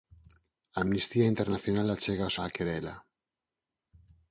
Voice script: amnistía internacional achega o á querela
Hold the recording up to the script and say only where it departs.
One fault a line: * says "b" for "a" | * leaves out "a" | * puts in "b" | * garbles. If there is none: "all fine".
all fine